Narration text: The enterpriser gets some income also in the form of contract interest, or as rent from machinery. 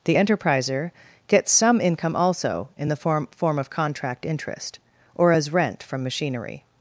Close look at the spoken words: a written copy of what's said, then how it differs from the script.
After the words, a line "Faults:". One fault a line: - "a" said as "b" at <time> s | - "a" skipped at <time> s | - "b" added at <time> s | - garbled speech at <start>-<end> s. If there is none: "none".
The enterpriser gets some income also in the form form of contract interest, or as rent from machinery.
Faults:
- "form" added at 3.3 s